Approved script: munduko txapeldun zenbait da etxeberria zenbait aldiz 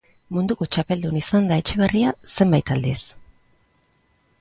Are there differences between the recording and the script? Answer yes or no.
yes